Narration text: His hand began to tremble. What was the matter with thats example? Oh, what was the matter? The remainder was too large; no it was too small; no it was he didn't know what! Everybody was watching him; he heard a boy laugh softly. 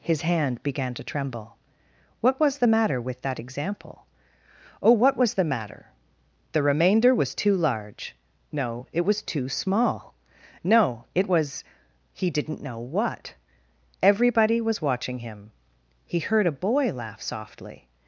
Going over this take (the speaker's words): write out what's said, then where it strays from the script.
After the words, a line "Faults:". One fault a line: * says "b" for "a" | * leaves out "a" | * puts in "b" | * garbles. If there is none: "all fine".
His hand began to tremble. What was the matter with that example? Oh, what was the matter? The remainder was too large; no it was too small; no it was he didn't know what! Everybody was watching him; he heard a boy laugh softly.
Faults:
* says "that" for "thats"